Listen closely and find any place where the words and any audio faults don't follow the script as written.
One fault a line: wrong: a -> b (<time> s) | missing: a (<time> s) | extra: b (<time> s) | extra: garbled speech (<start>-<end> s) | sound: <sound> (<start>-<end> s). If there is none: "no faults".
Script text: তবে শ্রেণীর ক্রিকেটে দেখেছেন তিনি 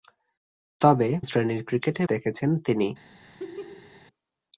sound: laugh (3.2-4.1 s)